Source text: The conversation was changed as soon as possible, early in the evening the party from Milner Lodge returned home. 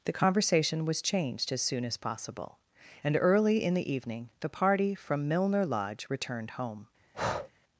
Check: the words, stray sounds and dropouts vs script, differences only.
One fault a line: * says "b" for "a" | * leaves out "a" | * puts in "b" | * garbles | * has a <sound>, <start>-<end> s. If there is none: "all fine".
* puts in "and"
* has a breath, 7.1-7.5 s